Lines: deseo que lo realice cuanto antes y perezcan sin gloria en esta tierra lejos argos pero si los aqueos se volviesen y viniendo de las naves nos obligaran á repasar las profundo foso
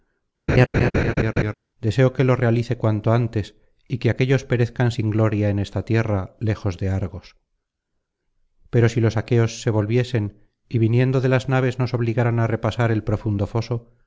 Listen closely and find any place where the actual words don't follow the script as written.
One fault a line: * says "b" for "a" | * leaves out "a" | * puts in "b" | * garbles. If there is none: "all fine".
* puts in "que aquéllos"
* puts in "de"
* says "el" for "las"